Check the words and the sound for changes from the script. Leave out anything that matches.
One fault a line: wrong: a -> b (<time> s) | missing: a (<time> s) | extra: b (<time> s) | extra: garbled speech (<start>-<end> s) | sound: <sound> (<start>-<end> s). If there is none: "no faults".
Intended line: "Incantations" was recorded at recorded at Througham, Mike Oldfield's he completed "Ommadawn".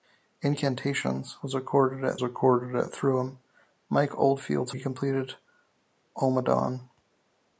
no faults